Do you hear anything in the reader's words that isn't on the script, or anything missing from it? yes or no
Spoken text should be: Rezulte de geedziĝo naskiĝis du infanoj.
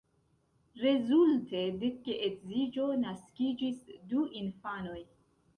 no